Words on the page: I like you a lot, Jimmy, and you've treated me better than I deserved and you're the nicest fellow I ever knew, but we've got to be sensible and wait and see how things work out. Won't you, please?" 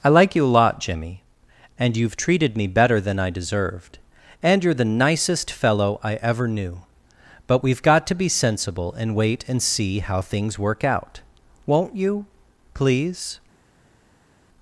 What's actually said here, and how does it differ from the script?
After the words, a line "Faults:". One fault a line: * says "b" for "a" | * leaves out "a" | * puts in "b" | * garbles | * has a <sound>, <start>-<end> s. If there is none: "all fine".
I like you a lot, Jimmy, and you've treated me better than I deserved and you're the nicest fellow I ever knew, but we've got to be sensible and wait and see how things work out. Won't you, please?"
Faults:
all fine